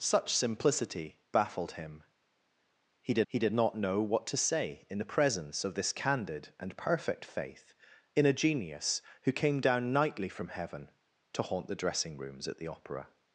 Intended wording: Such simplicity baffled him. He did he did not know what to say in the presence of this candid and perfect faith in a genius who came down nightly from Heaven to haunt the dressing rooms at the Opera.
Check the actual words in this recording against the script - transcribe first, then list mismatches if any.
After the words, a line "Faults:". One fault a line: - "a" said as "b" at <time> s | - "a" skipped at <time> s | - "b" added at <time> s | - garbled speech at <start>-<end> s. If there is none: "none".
Such simplicity baffled him. He did he did not know what to say in the presence of this candid and perfect faith in a genius who came down nightly from Heaven to haunt the dressing rooms at the Opera.
Faults:
none